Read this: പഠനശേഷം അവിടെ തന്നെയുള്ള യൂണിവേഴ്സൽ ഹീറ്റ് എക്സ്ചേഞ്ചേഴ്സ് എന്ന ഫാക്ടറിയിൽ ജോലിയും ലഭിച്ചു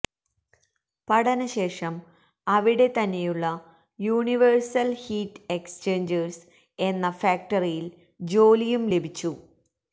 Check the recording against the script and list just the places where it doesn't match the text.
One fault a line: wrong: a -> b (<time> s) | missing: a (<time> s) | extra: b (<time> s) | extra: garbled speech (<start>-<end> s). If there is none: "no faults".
no faults